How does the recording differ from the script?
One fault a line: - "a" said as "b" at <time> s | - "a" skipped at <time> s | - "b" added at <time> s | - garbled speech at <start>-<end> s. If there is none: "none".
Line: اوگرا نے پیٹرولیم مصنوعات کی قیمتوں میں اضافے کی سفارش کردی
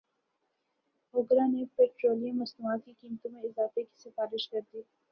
none